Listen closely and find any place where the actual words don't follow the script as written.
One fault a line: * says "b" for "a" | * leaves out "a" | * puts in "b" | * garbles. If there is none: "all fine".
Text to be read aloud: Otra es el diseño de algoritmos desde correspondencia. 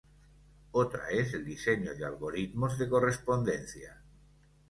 * says "de" for "desde"